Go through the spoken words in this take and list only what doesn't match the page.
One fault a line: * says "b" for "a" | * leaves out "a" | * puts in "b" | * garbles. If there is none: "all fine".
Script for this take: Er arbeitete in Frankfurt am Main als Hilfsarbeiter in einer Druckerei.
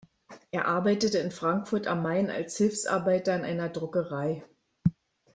all fine